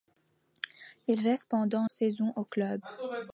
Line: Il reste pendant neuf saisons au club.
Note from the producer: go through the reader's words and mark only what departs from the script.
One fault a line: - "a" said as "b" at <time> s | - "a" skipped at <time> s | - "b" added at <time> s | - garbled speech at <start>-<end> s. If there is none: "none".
- "neuf" skipped at 1.9 s